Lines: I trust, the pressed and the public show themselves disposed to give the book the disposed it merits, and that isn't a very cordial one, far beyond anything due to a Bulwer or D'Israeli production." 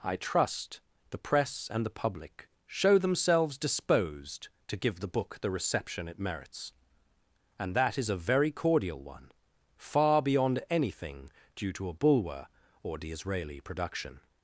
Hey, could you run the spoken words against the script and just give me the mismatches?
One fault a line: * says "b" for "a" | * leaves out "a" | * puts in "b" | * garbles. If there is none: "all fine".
* says "press" for "pressed"
* says "reception" for "disposed"
* says "is" for "isn't"